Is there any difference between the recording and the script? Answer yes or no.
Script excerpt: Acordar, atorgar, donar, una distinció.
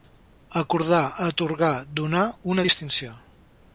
no